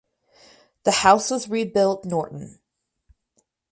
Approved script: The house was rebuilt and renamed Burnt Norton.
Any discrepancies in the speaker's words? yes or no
yes